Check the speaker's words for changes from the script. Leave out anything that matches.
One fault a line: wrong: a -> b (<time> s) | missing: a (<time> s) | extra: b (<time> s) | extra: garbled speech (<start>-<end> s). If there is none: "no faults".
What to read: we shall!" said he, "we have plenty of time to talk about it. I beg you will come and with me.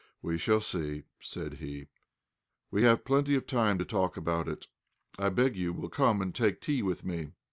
extra: see (0.6 s)
extra: take tea (6.3 s)